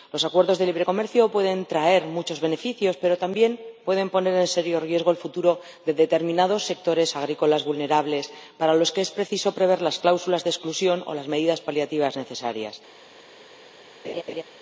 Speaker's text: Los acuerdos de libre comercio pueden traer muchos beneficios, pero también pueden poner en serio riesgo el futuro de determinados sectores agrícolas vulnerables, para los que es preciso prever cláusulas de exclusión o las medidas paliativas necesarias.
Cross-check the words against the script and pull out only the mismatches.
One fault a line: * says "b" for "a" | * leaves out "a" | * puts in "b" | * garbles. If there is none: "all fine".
* puts in "las"